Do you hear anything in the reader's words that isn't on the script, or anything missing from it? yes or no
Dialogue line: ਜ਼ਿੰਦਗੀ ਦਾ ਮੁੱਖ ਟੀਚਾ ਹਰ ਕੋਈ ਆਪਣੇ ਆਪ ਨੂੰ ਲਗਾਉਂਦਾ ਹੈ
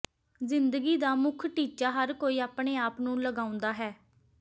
no